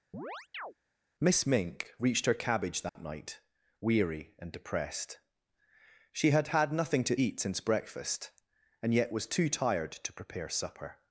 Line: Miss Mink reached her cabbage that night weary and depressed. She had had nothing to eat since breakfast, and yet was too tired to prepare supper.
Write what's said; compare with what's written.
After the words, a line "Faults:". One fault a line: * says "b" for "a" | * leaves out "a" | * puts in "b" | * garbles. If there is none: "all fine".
Miss Mink reached her cabbage that night weary and depressed. She had had nothing to eat since breakfast, and yet was too tired to prepare supper.
Faults:
all fine